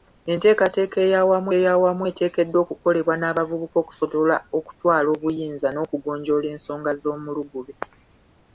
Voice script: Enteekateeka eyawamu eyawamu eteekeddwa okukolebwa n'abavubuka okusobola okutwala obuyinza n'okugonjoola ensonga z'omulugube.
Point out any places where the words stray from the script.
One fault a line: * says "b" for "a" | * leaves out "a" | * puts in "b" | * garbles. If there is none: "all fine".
all fine